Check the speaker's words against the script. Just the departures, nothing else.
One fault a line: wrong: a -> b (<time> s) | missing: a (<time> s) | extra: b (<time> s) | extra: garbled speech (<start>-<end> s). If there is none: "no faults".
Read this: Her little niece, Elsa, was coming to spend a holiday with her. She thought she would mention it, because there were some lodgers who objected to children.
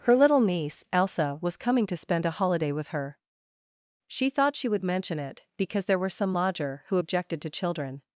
wrong: lodgers -> lodger (6.3 s)